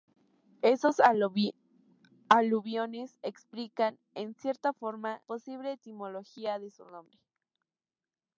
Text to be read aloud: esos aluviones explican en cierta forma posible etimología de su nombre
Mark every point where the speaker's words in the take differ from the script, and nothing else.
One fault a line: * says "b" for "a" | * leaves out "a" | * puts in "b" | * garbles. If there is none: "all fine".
all fine